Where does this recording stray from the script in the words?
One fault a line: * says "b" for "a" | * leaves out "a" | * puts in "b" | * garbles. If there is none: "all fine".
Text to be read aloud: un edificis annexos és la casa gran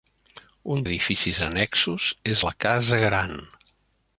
all fine